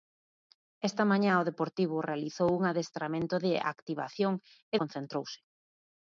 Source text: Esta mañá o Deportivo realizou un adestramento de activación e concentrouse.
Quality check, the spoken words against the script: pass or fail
pass